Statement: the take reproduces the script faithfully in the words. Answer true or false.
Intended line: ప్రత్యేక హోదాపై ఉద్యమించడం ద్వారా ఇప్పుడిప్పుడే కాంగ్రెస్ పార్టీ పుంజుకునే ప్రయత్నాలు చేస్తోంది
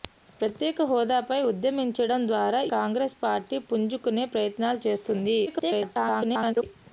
false